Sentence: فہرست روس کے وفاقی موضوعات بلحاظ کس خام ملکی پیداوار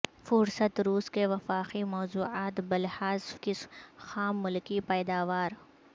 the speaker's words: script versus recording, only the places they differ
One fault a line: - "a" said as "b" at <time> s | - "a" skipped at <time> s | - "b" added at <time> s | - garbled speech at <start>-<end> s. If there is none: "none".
none